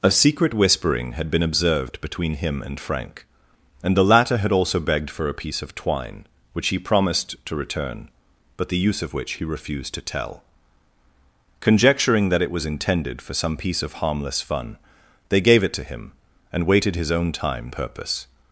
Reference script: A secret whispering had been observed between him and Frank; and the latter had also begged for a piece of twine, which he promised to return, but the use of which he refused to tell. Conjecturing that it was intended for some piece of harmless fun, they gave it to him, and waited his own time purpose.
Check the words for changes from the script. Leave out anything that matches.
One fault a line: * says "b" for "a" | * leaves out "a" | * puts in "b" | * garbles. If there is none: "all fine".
all fine